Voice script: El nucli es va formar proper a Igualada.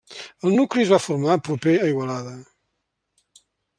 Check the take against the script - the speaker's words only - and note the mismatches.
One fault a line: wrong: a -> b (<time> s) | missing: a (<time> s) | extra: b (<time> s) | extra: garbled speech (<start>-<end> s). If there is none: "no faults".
no faults